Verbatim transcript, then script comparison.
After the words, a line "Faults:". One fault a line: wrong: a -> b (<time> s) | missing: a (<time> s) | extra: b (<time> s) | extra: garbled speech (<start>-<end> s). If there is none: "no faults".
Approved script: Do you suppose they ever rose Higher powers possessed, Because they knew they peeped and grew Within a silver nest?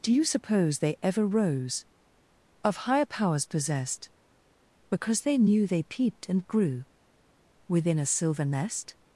Do you suppose they ever rose Of higher powers possessed, Because they knew they peeped and grew Within a silver nest?
Faults:
extra: Of (2.6 s)